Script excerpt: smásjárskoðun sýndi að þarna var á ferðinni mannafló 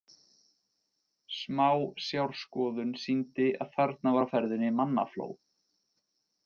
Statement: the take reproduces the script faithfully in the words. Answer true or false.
true